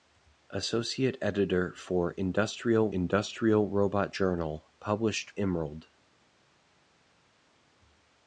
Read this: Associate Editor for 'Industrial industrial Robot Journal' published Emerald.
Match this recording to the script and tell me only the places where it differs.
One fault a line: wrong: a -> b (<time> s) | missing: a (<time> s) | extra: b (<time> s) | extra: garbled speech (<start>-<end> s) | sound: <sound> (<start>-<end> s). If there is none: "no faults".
no faults